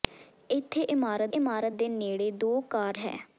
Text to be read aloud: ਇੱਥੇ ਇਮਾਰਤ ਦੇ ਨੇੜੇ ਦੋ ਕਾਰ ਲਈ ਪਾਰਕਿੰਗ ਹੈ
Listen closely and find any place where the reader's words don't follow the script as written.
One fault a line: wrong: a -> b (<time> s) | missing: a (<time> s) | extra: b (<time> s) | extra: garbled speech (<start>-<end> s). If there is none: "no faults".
extra: ਇਮਾਰਤ (1.3 s)
missing: ਲਈ ਪਾਰਕਿੰਗ (3.0 s)